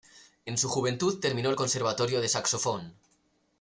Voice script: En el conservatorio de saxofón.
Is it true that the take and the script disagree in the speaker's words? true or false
true